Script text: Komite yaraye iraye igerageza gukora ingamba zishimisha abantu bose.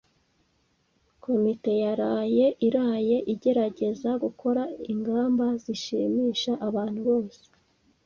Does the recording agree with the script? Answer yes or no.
yes